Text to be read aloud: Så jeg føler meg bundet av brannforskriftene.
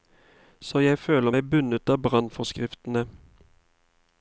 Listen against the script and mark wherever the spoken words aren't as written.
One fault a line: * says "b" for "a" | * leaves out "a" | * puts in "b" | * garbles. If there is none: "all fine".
all fine